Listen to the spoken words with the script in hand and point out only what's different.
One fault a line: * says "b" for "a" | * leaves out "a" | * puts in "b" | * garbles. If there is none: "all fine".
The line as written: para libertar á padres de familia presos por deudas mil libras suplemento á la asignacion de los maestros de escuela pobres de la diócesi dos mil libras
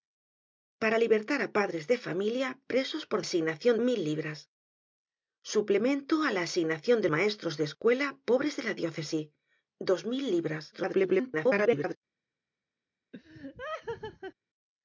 * says "asignacion" for "deudas"
* leaves out "los"
* garbles